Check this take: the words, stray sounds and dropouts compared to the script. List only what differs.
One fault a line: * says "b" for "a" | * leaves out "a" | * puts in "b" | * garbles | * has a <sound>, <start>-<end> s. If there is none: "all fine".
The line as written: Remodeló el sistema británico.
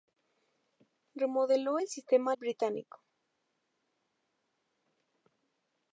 all fine